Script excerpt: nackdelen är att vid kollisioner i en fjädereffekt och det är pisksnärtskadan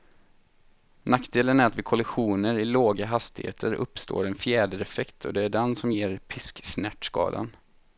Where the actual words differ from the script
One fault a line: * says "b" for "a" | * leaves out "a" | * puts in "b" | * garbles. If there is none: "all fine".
* puts in "låga hastigheter uppstår"
* puts in "den som ger"